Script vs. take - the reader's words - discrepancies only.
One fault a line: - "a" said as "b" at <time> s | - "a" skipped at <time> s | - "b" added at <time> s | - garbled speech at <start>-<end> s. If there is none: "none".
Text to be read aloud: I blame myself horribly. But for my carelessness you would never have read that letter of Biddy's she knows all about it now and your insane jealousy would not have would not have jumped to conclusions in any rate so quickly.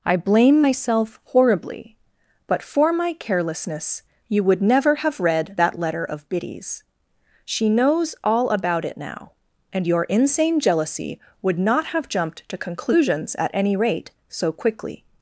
- "would not have" skipped at 12.1 s
- "in" said as "at" at 13.4 s